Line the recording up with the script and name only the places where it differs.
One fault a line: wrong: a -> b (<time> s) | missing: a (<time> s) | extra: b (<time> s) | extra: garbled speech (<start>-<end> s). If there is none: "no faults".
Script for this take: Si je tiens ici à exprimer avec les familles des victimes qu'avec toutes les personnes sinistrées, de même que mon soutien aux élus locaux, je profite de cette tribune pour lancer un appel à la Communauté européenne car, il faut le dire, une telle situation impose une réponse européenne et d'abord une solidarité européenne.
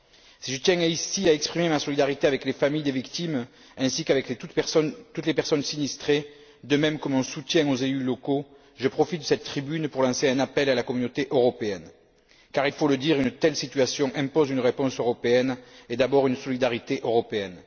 extra: ma solidarité (1.7 s)
extra: ainsi (3.8 s)